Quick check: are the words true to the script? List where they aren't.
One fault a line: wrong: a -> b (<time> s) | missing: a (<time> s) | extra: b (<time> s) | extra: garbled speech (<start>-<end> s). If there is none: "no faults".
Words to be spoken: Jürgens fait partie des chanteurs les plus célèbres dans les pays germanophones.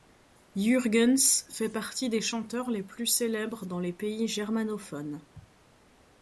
no faults